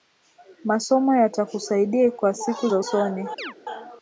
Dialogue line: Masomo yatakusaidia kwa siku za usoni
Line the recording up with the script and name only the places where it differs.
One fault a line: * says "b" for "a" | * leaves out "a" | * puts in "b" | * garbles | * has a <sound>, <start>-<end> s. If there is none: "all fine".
* has a chirp, 3.4-3.5 s